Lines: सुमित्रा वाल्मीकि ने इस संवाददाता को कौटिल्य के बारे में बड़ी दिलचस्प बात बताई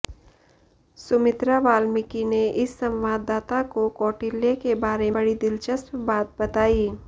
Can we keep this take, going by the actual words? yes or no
no